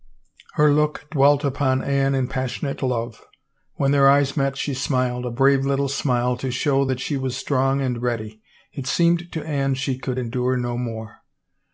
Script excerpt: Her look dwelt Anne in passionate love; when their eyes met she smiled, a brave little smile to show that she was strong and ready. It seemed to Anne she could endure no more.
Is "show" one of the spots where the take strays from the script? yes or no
no